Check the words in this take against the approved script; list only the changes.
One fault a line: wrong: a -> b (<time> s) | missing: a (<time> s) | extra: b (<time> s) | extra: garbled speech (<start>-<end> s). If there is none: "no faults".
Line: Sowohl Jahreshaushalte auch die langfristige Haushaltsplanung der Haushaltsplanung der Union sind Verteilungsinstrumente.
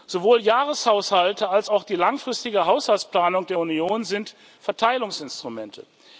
extra: als (1.5 s)
missing: Haushaltsplanung der (3.6 s)